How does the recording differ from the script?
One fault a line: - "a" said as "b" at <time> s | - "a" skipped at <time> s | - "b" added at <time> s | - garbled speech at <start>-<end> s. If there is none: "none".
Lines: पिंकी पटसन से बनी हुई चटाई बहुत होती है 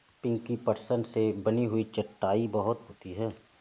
none